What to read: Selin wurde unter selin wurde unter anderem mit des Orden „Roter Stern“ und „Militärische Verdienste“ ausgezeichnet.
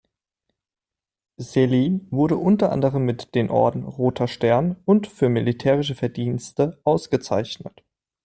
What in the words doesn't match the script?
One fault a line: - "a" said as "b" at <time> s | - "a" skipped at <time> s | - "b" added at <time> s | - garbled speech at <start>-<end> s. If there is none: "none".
- "selin wurde unter" skipped at 2.7 s
- "des" said as "den" at 3.4 s
- "Für" added at 5.0 s